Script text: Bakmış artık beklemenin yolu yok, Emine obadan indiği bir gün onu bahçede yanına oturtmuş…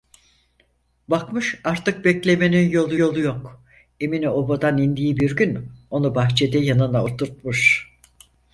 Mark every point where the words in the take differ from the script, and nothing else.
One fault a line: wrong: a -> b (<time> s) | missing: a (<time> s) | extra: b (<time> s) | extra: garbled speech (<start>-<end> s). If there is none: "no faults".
extra: yolu (2.9 s)